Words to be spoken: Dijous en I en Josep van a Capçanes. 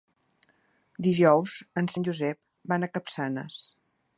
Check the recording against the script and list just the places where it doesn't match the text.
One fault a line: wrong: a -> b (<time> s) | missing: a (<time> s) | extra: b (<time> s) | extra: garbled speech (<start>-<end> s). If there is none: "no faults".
no faults